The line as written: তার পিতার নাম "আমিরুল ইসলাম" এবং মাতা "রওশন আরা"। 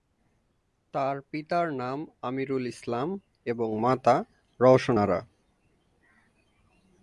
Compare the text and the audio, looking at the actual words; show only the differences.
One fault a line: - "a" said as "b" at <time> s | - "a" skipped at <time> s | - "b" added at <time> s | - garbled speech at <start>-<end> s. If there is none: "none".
none